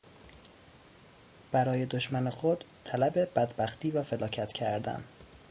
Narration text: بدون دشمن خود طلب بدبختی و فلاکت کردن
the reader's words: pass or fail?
fail